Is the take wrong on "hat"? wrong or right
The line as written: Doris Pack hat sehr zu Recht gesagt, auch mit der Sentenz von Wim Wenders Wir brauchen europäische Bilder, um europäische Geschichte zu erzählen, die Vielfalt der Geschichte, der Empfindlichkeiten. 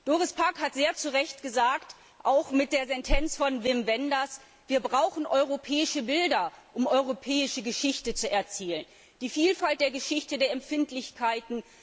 right